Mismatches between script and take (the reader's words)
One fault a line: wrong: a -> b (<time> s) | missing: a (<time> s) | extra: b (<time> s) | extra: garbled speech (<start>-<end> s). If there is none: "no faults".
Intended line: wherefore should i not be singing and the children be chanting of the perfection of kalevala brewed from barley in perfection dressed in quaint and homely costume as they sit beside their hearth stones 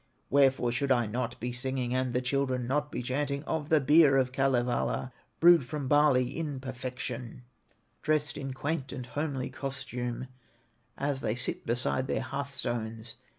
extra: not (2.6 s)
wrong: perfection -> beer (3.8 s)